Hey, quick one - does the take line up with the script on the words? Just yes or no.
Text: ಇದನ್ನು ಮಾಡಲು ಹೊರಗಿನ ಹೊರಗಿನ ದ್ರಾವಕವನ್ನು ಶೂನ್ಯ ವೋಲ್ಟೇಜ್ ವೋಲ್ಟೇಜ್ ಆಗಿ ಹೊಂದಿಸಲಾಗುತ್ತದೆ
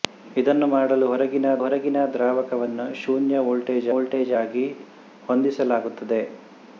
yes